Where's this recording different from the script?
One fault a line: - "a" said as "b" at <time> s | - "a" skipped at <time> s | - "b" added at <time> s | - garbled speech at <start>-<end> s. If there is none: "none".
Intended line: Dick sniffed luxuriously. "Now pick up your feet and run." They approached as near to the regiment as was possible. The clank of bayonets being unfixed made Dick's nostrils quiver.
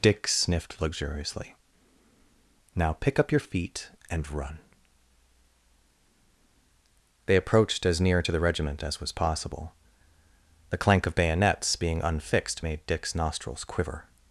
none